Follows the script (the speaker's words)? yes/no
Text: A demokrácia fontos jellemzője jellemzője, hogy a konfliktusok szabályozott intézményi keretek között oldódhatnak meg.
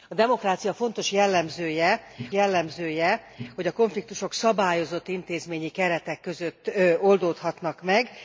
yes